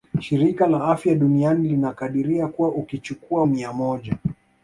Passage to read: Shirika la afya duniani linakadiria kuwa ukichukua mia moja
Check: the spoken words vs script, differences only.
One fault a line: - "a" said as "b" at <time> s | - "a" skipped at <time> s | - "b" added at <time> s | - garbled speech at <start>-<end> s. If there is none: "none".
none